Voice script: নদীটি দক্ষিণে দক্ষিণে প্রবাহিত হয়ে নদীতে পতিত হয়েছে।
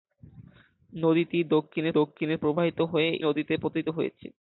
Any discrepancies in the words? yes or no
no